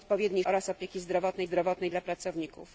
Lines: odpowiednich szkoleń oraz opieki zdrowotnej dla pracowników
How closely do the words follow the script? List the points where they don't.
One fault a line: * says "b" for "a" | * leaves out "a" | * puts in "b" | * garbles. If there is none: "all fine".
* leaves out "szkoleń"
* puts in "zdrowotnej"